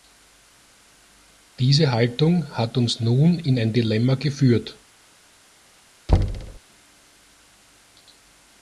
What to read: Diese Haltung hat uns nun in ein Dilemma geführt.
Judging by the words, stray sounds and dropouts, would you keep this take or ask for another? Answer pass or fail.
fail